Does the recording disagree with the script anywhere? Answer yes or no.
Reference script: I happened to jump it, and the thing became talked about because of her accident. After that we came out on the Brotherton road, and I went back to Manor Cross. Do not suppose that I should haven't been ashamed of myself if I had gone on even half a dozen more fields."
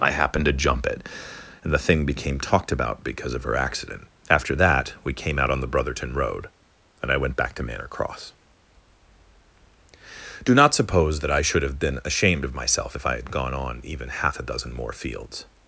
yes